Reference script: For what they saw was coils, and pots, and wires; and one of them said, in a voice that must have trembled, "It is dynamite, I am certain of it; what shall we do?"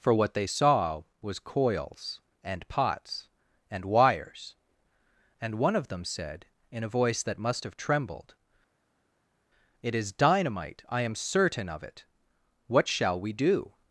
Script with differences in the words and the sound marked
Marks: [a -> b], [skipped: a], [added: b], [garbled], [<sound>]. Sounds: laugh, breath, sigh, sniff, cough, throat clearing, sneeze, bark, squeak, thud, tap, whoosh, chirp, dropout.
For what they saw was coils, and pots, and wires; and one of them said, in a voice that must have trembled, "It is dynamite, I am certain of it; what shall we do?"